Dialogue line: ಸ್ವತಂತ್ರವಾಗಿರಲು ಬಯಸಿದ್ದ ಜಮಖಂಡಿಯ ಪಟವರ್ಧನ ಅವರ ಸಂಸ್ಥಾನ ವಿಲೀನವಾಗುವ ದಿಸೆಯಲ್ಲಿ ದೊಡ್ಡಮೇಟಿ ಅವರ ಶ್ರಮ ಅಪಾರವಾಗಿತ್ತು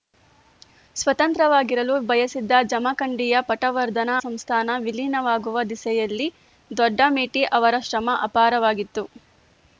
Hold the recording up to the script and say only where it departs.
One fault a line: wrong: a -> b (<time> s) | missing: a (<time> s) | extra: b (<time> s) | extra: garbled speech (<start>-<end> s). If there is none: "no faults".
missing: ಅವರ (4.1 s)